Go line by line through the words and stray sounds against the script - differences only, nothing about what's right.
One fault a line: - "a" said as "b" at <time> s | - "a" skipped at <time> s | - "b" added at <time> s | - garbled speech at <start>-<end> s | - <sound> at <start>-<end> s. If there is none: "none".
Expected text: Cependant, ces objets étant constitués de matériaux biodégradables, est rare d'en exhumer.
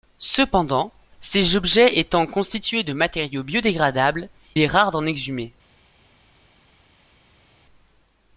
none